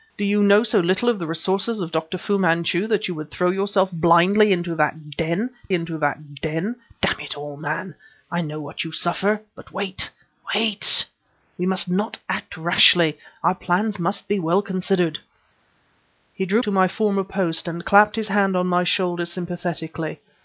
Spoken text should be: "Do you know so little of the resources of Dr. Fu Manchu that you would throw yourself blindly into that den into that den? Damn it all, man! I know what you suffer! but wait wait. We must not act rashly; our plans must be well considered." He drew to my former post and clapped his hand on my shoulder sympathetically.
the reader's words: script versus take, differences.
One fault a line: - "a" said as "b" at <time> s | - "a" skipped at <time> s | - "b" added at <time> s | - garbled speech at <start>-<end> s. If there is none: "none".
none